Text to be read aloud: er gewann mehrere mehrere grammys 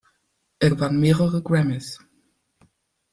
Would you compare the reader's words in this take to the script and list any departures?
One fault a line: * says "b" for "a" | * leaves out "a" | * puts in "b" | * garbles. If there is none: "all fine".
* leaves out "mehrere"